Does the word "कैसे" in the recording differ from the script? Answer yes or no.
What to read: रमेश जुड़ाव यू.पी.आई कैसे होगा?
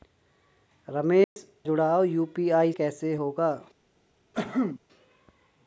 no